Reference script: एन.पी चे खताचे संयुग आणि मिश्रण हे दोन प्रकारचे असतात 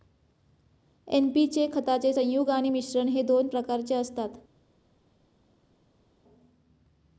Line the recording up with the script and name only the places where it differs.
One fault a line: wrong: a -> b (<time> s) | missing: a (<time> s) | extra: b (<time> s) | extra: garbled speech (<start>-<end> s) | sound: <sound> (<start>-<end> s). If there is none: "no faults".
no faults